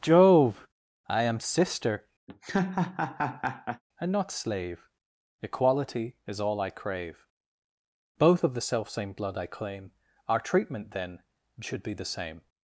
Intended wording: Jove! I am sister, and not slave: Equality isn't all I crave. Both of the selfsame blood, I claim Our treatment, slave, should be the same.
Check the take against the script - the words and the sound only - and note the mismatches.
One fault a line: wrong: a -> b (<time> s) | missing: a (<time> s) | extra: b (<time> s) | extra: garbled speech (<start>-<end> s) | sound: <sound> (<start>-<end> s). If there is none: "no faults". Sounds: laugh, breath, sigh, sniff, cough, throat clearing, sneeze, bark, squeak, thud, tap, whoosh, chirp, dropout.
sound: laugh (2.3-3.8 s)
wrong: isn't -> is (6.2 s)
wrong: slave -> then (10.9 s)